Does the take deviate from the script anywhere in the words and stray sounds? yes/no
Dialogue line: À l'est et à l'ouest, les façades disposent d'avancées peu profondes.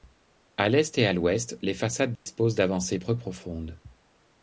yes